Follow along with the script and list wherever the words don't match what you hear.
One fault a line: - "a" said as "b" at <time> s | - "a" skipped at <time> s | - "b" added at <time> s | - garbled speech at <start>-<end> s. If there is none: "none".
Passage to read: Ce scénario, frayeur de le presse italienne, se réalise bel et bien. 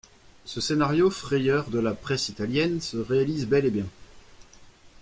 - "le" said as "la" at 1.8 s